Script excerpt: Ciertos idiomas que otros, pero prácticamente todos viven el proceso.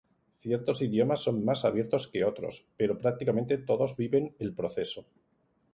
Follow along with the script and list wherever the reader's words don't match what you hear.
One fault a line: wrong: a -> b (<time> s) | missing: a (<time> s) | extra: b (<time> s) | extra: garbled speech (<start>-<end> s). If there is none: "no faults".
extra: son más abiertos (1.2 s)